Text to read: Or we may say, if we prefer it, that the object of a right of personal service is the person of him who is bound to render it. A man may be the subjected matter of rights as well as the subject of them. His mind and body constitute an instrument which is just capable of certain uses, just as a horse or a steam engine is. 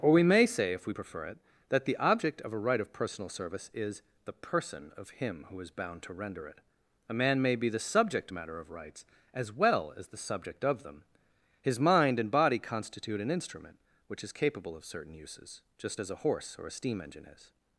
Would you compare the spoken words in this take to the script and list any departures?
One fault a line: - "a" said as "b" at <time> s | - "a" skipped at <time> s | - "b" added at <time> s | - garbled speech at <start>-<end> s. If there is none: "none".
- "subjected" said as "subject" at 7.8 s
- "just" skipped at 14.3 s